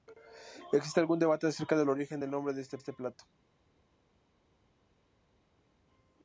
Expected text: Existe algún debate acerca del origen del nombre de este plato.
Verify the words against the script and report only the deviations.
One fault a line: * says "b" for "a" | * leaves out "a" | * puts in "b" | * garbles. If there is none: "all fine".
* puts in "este"